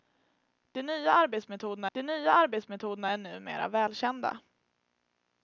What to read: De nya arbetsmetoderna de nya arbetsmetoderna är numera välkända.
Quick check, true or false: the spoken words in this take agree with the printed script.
true